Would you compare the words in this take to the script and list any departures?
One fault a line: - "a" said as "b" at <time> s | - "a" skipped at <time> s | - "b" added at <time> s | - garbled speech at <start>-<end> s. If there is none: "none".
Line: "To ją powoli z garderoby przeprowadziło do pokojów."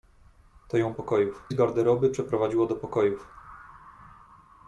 - "powoli" said as "pokojów" at 0.9 s